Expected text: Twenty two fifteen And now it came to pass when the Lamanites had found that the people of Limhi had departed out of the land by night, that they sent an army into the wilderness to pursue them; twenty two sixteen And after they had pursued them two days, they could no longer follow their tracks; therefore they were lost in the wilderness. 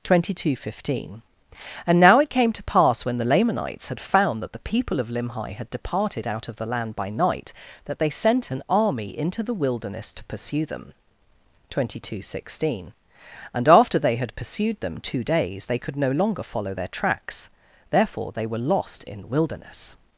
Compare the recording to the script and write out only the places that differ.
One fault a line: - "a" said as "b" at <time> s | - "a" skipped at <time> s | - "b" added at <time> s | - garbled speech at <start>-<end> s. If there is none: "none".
none